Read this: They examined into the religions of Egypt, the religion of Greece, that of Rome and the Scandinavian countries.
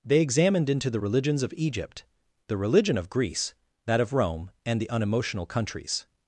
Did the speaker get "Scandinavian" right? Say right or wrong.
wrong